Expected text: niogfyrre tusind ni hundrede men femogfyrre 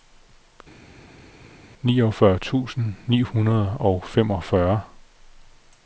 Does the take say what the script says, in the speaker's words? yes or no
no